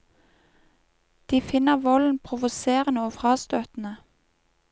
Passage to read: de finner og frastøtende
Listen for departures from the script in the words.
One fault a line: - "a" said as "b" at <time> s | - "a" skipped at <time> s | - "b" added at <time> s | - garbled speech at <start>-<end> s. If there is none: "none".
- "volden provoserende" added at 1.8 s